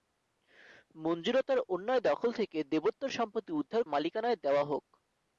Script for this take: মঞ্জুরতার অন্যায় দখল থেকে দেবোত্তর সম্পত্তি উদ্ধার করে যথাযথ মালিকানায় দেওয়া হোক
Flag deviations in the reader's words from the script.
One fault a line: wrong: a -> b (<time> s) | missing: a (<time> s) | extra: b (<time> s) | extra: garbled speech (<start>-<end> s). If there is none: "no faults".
missing: করে যথাযথ (3.8 s)